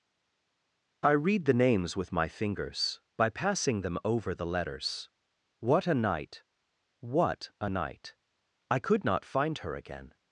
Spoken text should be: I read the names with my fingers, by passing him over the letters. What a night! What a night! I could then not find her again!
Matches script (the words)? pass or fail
fail